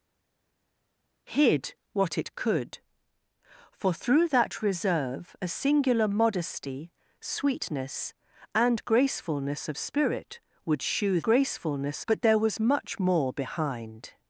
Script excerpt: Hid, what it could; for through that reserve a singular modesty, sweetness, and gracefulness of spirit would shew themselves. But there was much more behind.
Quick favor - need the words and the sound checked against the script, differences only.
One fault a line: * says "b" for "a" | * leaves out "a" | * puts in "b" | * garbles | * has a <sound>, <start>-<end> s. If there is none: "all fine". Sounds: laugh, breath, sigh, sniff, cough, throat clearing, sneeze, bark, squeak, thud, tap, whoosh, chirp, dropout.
* says "gracefulness" for "themselves"